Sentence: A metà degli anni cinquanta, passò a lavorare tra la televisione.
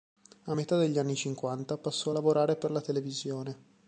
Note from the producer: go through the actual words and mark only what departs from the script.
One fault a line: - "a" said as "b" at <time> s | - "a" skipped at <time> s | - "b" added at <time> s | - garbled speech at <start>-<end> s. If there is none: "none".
- "tra" said as "per" at 2.6 s